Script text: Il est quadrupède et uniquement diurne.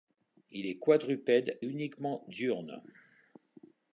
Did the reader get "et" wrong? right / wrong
wrong